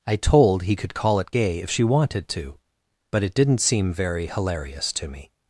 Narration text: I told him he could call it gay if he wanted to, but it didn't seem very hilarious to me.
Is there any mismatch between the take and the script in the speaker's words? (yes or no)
yes